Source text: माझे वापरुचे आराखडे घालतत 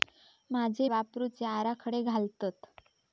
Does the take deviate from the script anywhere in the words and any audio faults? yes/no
no